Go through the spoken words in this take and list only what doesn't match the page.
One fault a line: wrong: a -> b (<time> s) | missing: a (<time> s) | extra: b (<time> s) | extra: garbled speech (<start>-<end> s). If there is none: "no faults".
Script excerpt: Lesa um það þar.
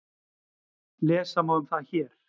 extra: má (1.4 s)
wrong: þar -> hér (1.9 s)